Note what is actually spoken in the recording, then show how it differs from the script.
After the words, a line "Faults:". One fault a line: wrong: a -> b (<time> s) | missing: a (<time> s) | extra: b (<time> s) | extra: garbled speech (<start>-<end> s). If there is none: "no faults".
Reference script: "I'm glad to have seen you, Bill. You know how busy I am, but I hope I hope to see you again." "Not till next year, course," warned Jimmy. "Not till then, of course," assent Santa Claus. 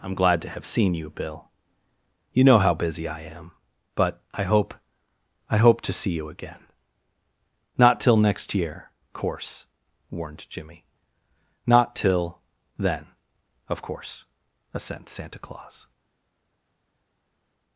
"I'm glad to have seen you, Bill. You know how busy I am, but I hope I hope to see you again." "Not till next year, course," warned Jimmy. "Not till then, of course," assent Santa Claus.
Faults:
no faults